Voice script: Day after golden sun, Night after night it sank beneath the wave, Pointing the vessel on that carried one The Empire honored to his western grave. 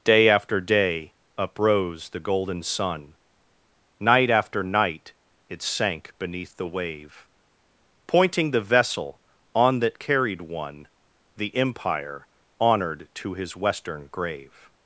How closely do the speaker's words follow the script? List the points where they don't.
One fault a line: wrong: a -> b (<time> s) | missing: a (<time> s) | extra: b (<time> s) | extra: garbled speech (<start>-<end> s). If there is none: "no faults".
extra: day uprose the (0.6 s)